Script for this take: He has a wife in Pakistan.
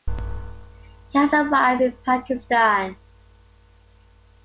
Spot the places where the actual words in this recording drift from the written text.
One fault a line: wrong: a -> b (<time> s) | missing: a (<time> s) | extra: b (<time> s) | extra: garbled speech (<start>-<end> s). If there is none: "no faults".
no faults